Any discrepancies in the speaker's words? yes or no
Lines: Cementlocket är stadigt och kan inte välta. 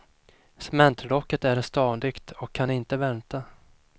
no